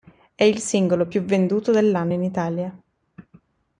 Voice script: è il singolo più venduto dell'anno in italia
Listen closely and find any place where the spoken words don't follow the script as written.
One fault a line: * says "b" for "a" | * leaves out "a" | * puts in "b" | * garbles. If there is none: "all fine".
all fine